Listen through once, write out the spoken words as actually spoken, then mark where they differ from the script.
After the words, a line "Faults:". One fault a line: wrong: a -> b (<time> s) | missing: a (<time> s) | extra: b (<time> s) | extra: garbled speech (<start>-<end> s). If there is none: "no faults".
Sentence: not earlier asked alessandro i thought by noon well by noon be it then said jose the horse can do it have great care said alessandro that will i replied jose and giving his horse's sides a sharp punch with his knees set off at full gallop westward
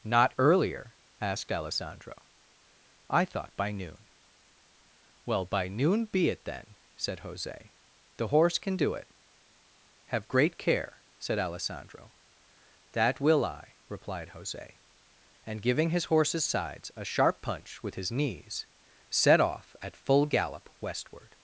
not earlier asked alessandro i thought by noon well by noon be it then said jose the horse can do it have great care said alessandro that will i replied jose and giving his horse's sides a sharp punch with his knees set off at full gallop westward
Faults:
no faults